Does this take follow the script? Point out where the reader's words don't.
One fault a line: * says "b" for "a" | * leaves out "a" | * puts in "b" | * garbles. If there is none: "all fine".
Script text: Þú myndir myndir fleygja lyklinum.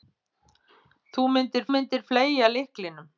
all fine